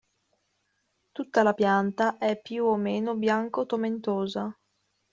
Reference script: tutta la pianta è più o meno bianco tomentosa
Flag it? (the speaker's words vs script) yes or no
no